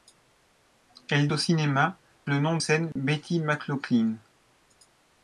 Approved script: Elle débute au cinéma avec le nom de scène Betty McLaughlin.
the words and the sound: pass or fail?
fail